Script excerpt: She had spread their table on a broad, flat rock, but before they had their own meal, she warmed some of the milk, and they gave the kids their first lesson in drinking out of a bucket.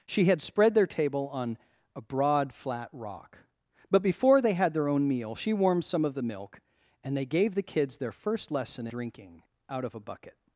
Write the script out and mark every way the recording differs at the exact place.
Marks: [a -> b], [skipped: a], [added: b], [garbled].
She had spread their table on a broad, flat rock, but before they had their own meal, she warmed some of the milk, and they gave the kids their first lesson [skipped: in] drinking out of a bucket.